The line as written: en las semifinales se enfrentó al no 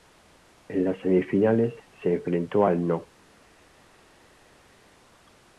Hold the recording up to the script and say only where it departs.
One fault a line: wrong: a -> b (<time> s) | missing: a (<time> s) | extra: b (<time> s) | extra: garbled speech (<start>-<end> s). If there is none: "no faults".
no faults